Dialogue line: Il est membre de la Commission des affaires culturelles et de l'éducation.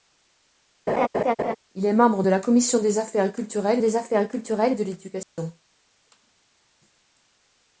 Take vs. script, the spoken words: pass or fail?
fail